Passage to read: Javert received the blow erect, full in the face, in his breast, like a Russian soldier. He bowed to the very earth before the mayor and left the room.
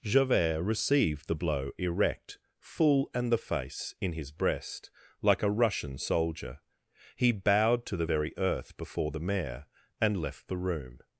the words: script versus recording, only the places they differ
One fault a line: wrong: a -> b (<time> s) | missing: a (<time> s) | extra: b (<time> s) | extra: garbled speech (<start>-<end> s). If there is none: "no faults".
wrong: in -> and (3.1 s)